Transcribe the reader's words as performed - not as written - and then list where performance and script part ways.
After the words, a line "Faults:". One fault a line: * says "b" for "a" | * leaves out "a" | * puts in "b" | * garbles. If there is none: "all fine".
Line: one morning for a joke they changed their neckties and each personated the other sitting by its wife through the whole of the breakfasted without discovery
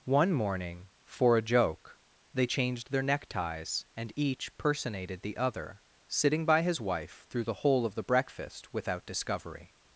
one morning for a joke they changed their neckties and each personated the other sitting by his wife through the whole of the breakfast without discovery
Faults:
* says "his" for "its"
* says "breakfast" for "breakfasted"